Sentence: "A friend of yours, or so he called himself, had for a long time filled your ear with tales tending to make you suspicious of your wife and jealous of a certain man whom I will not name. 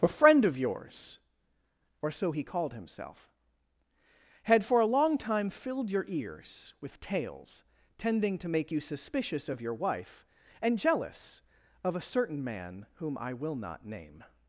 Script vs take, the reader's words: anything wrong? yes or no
yes